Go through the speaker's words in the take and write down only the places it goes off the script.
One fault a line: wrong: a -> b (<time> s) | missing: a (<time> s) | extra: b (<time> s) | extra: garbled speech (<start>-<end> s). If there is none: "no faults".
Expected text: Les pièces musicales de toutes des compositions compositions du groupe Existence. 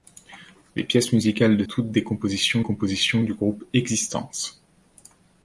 no faults